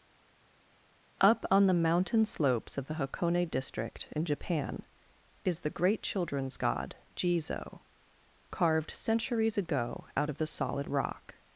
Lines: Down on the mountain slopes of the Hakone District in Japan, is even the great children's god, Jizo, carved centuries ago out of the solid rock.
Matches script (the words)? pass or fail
fail